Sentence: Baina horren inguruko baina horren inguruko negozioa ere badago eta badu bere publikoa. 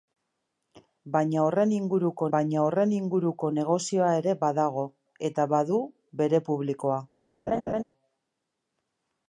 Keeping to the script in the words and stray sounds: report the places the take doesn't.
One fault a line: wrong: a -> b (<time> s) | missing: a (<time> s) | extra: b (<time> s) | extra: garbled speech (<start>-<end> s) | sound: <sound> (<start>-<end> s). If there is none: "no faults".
sound: laugh (7.5-7.8 s)